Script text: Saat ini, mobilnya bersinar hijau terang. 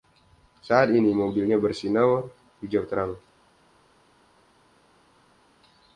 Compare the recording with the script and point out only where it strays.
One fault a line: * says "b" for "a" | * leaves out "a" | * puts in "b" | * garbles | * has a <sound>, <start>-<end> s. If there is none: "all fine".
all fine